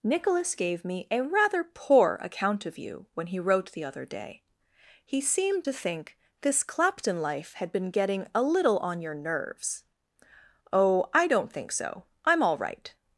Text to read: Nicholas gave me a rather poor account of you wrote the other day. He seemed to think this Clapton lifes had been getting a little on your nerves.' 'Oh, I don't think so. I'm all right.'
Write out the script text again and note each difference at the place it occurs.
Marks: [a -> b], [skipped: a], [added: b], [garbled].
Nicholas gave me a rather poor account of you [added: when he] wrote the other day. He seemed to think this Clapton [lifes -> life] had been getting a little on your nerves.' 'Oh, I don't think so. I'm all right.'